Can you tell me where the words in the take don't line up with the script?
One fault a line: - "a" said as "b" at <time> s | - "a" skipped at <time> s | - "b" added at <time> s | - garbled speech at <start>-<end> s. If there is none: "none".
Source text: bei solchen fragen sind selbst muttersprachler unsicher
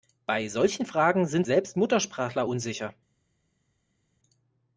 none